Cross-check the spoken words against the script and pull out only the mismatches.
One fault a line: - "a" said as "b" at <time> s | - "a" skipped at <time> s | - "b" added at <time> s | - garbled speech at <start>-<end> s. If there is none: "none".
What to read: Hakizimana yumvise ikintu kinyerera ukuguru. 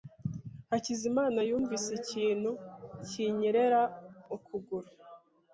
none